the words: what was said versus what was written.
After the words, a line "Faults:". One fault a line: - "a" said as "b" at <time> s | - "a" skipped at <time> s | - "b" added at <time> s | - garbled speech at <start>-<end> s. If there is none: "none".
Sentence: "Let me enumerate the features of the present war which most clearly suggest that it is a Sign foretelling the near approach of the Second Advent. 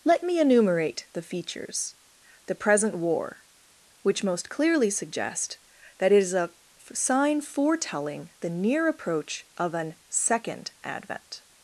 "Let me enumerate the features the present war which most clearly suggest that it is a Sign foretelling the near approach of an Second Advent.
Faults:
- "of" skipped at 1.9 s
- "the" said as "an" at 9.7 s